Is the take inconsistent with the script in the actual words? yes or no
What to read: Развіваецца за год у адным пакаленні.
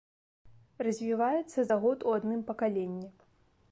no